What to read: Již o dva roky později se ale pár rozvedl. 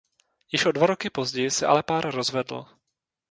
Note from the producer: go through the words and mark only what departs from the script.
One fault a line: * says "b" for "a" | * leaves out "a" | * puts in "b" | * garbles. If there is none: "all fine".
all fine